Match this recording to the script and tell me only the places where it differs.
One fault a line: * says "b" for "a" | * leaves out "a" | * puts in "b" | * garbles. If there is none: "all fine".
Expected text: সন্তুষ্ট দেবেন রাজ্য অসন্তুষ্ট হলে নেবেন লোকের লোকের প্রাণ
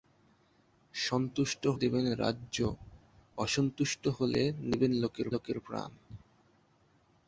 all fine